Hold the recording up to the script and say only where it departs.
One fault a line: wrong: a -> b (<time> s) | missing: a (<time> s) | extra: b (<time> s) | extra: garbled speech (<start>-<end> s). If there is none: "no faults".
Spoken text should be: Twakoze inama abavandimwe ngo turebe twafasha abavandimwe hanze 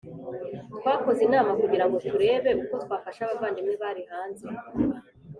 wrong: abavandimwe -> kugira (1.6 s)
extra: uko (2.6 s)
extra: bari (3.8 s)